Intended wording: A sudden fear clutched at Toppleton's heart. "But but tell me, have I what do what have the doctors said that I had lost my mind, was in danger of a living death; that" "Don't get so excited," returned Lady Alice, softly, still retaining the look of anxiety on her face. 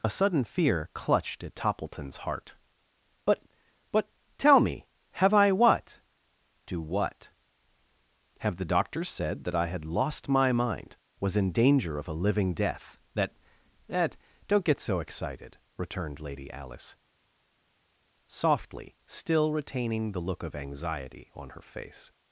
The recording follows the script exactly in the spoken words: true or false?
false